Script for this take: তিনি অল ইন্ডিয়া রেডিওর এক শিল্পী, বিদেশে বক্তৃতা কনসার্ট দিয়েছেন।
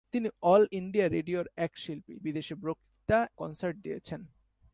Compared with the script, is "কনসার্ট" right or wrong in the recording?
right